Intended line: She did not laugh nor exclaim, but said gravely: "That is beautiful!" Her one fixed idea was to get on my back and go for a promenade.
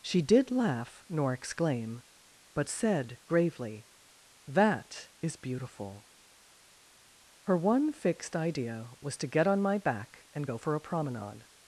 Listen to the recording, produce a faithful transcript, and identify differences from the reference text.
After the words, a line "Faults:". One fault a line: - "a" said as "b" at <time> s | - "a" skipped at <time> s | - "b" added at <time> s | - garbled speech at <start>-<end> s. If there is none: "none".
She did laugh nor exclaim, but said gravely: "That is beautiful!" Her one fixed idea was to get on my back and go for a promenade.
Faults:
- "not" skipped at 0.5 s